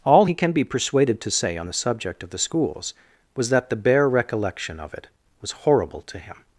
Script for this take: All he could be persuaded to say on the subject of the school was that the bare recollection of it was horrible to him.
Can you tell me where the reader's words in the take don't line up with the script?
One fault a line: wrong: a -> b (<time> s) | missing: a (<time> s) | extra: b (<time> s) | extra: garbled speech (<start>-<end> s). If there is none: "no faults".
wrong: could -> can (0.3 s)
wrong: school -> schools (2.4 s)